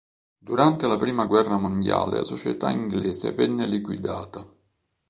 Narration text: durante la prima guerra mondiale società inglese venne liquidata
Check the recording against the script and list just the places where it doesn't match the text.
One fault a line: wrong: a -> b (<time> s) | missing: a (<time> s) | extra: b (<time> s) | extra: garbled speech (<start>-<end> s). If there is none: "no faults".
no faults